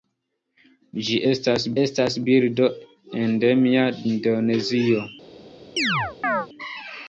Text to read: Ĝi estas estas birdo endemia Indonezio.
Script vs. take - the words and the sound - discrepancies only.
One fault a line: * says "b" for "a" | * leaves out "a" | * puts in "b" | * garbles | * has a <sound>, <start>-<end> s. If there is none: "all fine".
* has a chirp, 5.8-6.5 s